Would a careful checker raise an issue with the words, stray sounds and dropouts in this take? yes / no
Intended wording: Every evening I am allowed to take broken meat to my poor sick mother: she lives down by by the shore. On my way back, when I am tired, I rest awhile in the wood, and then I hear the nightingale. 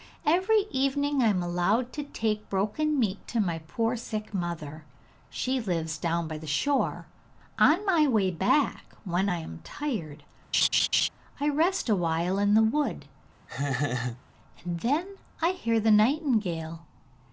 yes